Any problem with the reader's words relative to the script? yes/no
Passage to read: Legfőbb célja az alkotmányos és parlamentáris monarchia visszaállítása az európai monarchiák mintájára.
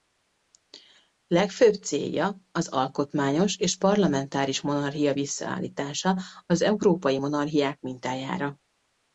no